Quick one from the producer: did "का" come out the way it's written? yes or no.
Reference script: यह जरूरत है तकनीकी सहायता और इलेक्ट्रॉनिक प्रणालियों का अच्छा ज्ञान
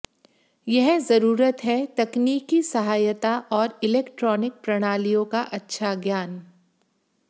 yes